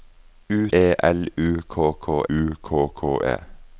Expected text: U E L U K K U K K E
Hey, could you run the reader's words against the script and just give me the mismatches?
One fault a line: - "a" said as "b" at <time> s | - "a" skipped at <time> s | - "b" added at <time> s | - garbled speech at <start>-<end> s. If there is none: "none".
none